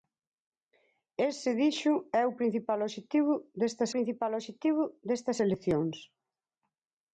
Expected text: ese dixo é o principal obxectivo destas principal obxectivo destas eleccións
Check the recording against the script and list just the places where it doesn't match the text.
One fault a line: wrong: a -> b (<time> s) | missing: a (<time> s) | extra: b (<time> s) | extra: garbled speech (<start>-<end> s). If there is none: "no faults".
no faults